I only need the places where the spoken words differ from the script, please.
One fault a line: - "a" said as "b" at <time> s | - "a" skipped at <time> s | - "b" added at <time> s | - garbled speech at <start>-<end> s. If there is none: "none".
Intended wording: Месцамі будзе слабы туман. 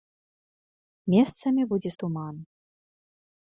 - "слабы" skipped at 1.9 s